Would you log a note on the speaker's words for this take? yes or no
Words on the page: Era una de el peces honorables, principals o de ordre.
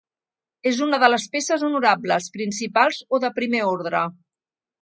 yes